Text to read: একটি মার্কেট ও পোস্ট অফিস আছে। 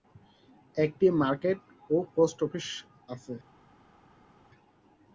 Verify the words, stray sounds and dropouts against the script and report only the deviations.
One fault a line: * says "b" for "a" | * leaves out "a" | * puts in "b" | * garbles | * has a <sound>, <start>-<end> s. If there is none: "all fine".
all fine